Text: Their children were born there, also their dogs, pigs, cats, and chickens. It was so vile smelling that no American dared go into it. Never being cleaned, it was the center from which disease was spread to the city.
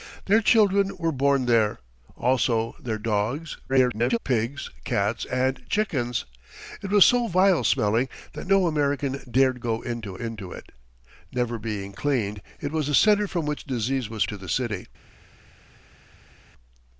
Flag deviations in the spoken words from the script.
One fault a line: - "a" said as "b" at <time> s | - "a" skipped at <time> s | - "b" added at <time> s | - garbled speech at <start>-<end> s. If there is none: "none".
- garbled speech at 3.7-4.2 s
- "into" added at 10.2 s
- "spread" skipped at 14.2 s